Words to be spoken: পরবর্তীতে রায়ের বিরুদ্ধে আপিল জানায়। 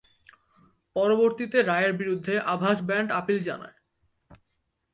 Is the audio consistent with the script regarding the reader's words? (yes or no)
no